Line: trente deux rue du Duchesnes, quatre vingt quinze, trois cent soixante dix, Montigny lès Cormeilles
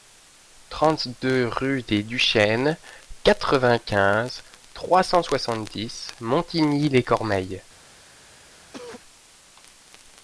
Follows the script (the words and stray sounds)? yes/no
no